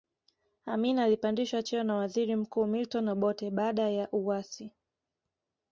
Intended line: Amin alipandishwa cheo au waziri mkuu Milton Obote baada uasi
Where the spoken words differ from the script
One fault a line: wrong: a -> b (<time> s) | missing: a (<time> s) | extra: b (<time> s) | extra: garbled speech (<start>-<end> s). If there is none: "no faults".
wrong: au -> na (1.8 s)
extra: ya (3.9 s)